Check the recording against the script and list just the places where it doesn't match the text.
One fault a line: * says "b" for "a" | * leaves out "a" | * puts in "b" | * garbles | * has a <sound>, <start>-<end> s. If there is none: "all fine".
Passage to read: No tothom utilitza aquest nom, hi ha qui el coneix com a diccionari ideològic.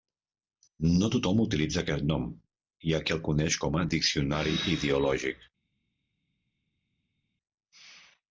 all fine